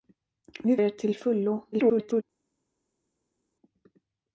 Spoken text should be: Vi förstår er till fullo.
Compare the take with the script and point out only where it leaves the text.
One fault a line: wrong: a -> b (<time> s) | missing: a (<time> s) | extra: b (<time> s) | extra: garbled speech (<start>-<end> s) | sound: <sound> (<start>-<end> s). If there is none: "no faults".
missing: förstår (0.8 s)
extra: garbled speech (1.7-2.2 s)